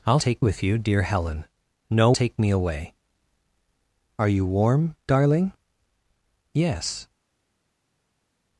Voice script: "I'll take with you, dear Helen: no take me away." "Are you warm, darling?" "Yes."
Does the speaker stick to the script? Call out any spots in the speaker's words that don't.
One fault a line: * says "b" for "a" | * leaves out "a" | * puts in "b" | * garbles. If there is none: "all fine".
all fine